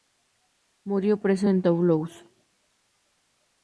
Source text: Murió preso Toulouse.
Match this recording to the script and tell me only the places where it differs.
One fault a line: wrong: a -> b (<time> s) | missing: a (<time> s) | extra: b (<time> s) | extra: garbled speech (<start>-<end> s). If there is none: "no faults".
extra: en (1.5 s)